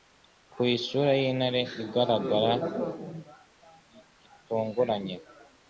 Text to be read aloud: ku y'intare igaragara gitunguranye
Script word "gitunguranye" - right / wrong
right